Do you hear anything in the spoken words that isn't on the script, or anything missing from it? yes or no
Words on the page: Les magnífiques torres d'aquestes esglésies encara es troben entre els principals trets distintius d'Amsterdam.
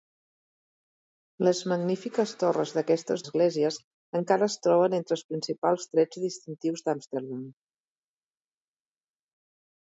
no